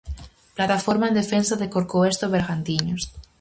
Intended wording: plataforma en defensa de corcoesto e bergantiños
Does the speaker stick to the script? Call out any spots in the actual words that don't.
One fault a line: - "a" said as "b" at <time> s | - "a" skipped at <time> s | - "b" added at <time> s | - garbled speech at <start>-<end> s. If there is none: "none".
none